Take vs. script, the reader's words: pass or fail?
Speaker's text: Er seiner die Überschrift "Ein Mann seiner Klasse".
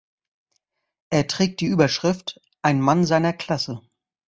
fail